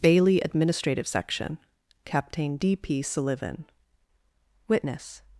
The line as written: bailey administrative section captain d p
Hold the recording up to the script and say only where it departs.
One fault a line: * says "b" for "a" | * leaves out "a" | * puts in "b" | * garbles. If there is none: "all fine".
* puts in "sullivan witness"